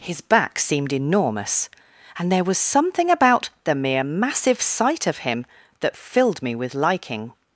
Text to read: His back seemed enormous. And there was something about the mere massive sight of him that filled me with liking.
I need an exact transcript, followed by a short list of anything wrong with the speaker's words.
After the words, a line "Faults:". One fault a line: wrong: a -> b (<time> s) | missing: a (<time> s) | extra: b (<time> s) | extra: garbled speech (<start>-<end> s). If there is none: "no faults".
His back seemed enormous. And there was something about the mere massive sight of him that filled me with liking.
Faults:
no faults